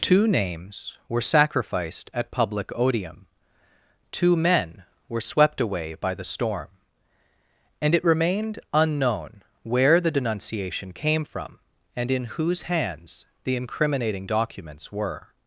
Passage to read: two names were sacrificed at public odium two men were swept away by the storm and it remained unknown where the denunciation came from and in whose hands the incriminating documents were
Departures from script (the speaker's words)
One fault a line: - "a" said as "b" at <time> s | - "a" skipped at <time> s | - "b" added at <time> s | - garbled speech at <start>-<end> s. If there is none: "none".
none